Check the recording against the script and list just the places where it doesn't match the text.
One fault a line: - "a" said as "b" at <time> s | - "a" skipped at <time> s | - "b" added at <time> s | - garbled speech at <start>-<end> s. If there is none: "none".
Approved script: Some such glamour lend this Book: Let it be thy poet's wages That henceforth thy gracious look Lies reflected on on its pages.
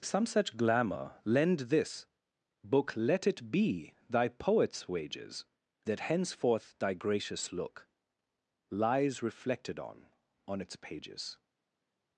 none